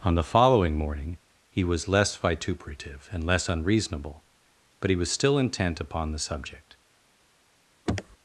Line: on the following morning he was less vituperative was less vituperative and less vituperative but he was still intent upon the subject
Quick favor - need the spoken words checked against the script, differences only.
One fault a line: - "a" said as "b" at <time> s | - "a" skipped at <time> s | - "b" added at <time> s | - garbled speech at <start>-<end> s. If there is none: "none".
- "was less vituperative" skipped at 3.1 s
- "vituperative" said as "unreasonable" at 3.5 s